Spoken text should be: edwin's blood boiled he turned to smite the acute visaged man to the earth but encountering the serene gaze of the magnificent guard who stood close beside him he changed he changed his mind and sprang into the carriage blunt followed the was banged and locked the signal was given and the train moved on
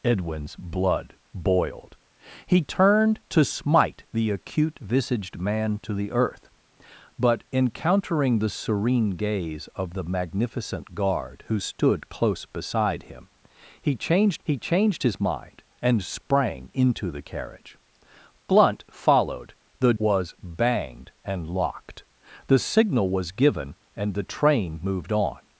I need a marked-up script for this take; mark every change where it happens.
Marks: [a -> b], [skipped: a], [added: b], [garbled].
edwin's blood boiled he turned to smite the acute visaged man to the earth but encountering the serene gaze of the magnificent guard who stood close beside him he changed he changed his mind and sprang into the carriage blunt followed the was banged and locked the signal was given and the train moved on